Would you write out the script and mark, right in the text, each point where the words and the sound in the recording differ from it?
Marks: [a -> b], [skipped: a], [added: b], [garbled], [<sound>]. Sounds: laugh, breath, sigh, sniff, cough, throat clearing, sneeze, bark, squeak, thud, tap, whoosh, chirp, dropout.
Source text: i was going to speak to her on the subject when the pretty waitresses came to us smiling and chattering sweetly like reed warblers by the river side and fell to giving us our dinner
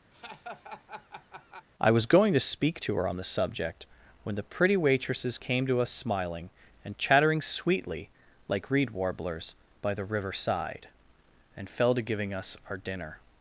[laugh] i was going to speak to her on the subject when the pretty waitresses came to us smiling and chattering sweetly like reed warblers by the river side and fell to giving us our dinner